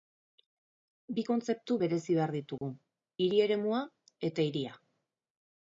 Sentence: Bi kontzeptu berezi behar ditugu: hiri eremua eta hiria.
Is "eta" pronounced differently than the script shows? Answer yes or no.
no